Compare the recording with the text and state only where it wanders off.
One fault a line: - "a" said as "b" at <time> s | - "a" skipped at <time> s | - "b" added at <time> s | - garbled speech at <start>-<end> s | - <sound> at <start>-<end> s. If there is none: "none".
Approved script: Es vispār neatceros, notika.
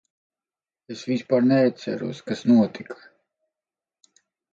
- "kas" added at 2.3 s